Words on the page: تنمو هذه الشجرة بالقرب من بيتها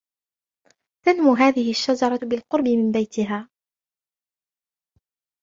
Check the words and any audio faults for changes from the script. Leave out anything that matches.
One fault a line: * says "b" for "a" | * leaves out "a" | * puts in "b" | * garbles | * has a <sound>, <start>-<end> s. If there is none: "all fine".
all fine